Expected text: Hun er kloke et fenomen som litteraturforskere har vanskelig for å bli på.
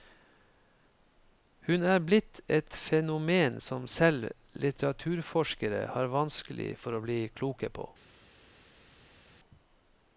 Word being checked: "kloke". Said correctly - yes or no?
no